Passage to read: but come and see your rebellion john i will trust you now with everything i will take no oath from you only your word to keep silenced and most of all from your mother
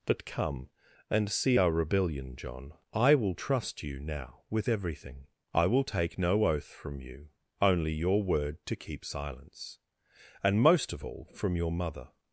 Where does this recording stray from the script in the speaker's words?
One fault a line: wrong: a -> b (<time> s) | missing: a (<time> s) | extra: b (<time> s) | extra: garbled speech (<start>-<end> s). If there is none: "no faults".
wrong: your -> our (1.6 s)
wrong: silenced -> silence (9.0 s)